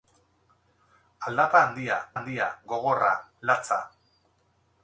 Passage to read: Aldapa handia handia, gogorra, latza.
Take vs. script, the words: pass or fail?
pass